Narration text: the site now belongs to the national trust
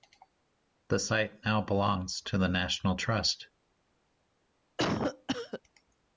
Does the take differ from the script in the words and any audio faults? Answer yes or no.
yes